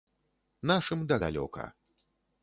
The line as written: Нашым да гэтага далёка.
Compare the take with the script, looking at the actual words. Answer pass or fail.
fail